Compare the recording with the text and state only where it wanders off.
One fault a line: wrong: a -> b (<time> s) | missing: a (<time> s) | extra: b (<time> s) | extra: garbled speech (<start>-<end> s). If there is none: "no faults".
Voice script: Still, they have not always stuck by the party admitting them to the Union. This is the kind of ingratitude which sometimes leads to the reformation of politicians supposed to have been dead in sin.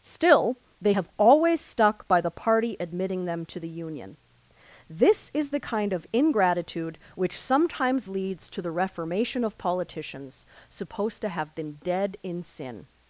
missing: not (1.1 s)